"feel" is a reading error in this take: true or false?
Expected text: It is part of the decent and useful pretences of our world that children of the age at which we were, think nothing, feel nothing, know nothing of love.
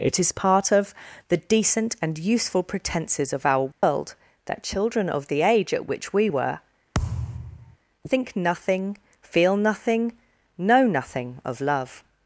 false